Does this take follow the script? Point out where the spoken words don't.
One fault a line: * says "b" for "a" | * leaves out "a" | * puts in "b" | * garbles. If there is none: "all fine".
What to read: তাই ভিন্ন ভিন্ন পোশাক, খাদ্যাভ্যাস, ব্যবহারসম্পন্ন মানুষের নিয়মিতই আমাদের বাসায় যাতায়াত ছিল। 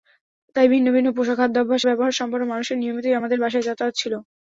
all fine